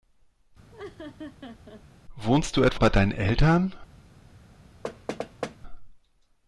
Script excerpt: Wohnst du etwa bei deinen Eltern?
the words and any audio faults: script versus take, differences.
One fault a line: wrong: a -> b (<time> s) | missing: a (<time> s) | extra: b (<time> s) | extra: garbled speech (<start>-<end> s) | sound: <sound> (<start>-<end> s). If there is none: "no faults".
sound: laugh (0.7-1.8 s)
sound: thud (4.8-5.6 s)